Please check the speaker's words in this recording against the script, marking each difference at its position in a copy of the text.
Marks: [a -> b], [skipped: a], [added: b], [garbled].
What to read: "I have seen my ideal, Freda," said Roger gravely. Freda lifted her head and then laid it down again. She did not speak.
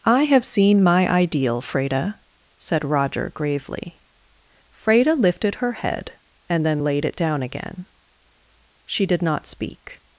"I have seen my ideal, Freda," said Roger gravely. Freda lifted her head and then laid it down again. She did not speak.